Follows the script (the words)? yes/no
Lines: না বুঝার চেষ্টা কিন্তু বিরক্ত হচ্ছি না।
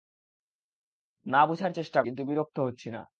yes